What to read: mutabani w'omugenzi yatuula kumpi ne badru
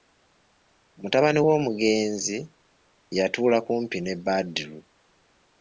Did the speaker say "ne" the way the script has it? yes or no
yes